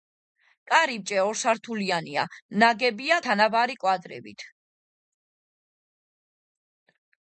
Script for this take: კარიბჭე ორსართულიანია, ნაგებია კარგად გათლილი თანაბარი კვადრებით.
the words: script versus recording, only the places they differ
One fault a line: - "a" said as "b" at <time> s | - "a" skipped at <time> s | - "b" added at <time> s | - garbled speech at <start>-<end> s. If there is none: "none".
- "კარგად გათლილი" skipped at 3.2 s